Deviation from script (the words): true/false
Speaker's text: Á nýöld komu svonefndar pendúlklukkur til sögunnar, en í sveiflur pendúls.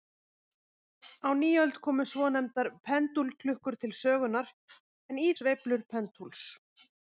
false